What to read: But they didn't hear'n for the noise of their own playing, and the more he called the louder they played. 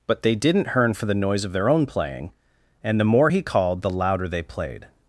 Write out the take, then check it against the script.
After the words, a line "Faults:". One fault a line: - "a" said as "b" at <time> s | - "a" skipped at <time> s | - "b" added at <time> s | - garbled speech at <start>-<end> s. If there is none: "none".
But they didn't hear'n for the noise of their own playing, and the more he called the louder they played.
Faults:
none